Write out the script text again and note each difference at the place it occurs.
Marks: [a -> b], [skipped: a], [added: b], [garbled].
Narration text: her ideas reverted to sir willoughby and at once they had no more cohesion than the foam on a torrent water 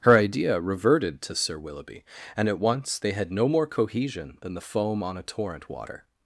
her [ideas -> idea] reverted to sir willoughby and at once they had no more cohesion than the foam on a torrent water